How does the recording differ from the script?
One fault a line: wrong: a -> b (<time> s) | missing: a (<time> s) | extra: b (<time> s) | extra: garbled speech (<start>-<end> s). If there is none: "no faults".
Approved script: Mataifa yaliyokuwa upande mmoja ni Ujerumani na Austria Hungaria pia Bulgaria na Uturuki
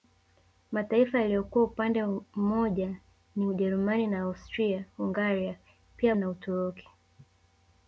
missing: Bulgaria (6.2 s)